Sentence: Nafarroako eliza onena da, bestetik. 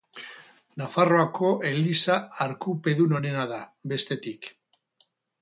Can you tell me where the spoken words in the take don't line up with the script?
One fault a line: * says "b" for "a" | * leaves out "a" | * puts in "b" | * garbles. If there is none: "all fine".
* puts in "arkupedun"